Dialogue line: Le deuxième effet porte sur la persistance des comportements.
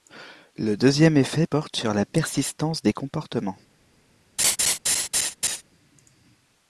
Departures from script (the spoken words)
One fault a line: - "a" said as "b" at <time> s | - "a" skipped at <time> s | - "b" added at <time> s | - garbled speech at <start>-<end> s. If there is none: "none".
none